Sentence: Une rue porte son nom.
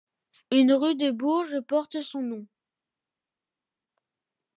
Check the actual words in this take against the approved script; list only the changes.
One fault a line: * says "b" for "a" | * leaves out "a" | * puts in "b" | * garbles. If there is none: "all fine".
* puts in "de Bourges"